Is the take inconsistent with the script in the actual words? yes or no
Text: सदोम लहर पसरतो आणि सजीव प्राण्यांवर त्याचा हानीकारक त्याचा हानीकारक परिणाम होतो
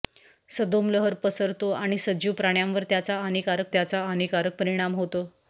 no